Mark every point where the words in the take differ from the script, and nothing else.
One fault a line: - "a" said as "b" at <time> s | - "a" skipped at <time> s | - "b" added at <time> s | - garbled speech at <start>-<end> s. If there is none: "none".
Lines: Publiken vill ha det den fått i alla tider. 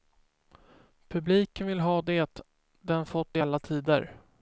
none